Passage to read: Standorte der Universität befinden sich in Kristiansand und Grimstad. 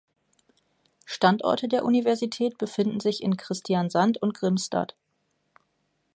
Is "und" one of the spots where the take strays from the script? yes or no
no